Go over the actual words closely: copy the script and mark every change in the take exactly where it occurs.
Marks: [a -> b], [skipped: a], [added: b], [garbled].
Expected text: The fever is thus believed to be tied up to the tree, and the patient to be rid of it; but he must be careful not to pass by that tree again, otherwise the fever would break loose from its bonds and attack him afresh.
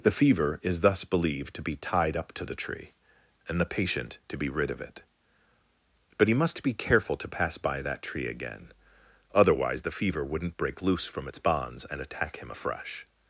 The fever is thus believed to be tied up to the tree, and the patient to be rid of it; but he must be careful [skipped: not] to pass by that tree again, otherwise the fever [would -> wouldn't] break loose from its bonds and attack him afresh.